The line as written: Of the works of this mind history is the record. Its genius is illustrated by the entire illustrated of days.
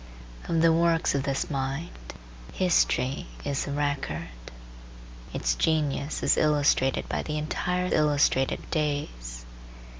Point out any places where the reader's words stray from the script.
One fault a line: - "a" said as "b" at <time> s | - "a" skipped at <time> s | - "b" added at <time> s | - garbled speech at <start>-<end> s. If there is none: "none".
none